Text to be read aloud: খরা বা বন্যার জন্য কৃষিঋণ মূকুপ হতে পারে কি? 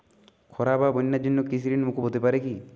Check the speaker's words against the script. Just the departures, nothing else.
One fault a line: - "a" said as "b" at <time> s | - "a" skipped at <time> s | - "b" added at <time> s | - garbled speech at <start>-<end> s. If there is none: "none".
none